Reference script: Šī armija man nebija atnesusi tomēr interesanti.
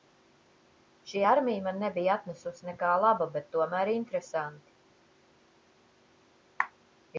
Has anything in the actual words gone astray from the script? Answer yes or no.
yes